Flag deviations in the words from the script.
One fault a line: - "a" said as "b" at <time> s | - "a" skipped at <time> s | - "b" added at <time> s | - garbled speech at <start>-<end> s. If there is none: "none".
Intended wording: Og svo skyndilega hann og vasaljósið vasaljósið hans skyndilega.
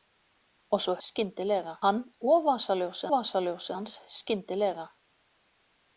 none